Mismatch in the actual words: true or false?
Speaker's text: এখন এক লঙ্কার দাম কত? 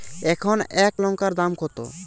false